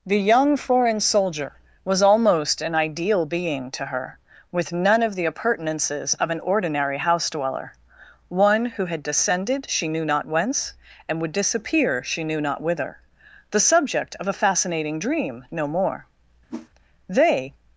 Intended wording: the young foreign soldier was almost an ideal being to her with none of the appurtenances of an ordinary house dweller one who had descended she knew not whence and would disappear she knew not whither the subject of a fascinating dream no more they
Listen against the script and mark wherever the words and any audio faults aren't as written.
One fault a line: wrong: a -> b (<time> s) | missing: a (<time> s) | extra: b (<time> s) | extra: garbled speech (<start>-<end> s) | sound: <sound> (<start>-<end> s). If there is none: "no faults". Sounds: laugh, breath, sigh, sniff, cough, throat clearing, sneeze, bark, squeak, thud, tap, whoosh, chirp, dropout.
sound: whoosh (16.5-16.7 s)